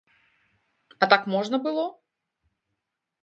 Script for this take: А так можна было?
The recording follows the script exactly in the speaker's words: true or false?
true